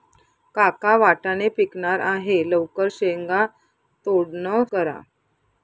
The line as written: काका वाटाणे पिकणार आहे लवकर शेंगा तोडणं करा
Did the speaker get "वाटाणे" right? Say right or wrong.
right